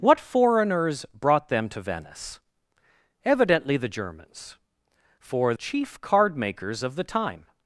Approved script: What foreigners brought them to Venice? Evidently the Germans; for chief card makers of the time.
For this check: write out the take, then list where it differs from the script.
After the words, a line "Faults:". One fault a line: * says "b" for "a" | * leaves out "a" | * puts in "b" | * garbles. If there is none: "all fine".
What foreigners brought them to Venice? Evidently the Germans; for chief card makers of the time.
Faults:
all fine